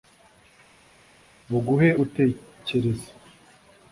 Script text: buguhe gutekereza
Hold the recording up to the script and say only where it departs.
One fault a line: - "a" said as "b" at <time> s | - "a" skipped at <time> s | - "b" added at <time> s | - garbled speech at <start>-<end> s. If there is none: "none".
none